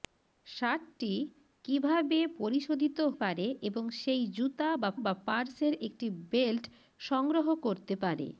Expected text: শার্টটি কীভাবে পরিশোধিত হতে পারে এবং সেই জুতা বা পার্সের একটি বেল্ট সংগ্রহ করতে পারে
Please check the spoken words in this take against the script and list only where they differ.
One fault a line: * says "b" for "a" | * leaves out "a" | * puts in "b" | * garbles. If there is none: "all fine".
* leaves out "হতে"
* puts in "বা"